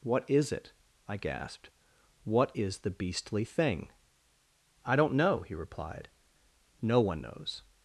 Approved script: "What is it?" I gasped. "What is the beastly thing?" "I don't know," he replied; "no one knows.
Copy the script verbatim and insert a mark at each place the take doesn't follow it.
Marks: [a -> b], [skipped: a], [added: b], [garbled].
"What is it?" I gasped. "What is the beastly thing?" "I don't know," he replied; "no one knows.